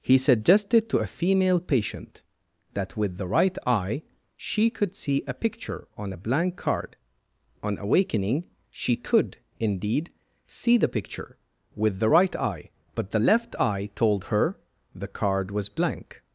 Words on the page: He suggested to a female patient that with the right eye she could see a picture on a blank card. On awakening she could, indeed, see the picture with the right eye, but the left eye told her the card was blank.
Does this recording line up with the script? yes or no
yes